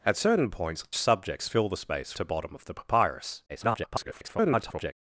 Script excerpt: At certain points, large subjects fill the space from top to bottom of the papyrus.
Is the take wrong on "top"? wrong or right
wrong